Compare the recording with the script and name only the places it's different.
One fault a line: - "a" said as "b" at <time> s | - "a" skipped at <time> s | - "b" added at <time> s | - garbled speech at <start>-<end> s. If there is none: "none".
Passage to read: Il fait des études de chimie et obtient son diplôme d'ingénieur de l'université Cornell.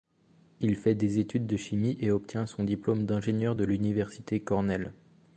none